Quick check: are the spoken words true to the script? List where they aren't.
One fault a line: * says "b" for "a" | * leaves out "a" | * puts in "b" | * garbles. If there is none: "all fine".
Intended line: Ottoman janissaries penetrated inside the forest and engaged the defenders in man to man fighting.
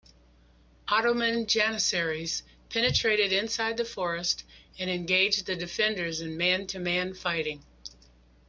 all fine